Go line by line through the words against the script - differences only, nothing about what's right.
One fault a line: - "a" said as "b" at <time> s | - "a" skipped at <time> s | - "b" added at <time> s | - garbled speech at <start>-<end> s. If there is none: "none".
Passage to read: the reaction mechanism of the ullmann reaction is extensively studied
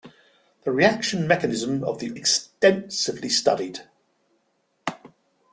- "ullmann reaction is" skipped at 2.1 s